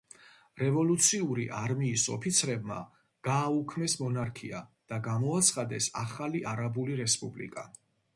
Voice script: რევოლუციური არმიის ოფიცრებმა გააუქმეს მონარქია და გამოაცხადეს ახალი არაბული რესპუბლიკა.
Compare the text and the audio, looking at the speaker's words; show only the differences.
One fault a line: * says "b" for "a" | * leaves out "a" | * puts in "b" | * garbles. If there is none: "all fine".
all fine